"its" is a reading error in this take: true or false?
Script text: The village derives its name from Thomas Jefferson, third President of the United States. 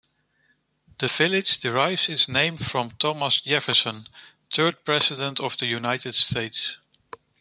false